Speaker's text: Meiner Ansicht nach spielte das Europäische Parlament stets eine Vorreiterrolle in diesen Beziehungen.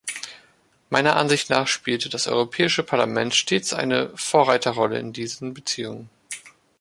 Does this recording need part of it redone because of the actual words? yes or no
no